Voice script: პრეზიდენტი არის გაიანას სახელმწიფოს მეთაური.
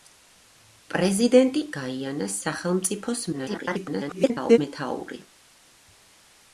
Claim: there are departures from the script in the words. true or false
true